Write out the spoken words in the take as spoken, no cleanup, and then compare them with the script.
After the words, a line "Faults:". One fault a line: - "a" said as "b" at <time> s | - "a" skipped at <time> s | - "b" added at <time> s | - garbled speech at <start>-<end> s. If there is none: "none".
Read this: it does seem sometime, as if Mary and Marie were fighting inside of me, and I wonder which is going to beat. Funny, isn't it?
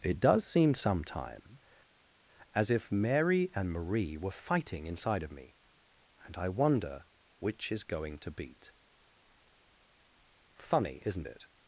it does seem sometime, as if Mary and Marie were fighting inside of me, and I wonder which is going to beat. Funny, isn't it?
Faults:
none